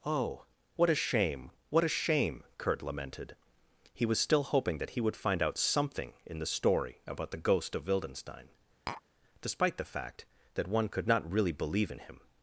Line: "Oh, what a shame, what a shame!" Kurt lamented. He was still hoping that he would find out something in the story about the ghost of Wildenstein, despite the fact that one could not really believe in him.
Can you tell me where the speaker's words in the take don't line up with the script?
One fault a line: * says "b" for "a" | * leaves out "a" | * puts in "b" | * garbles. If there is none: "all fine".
all fine